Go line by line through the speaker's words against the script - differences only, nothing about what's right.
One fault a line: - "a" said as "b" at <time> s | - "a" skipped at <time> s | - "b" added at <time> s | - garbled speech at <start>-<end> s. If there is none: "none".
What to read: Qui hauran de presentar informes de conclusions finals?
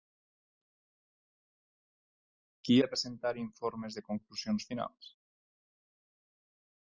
- "hauran" skipped at 2.8 s